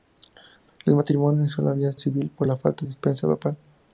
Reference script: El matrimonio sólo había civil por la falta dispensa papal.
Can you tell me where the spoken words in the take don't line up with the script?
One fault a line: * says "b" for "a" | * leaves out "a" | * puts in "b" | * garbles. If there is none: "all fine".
all fine